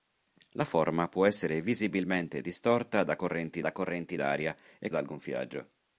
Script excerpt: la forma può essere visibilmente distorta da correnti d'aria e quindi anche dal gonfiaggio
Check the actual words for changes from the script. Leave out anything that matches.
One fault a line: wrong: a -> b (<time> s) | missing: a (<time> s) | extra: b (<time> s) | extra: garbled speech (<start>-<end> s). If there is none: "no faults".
extra: da correnti (3.6 s)
missing: quindi anche (4.9 s)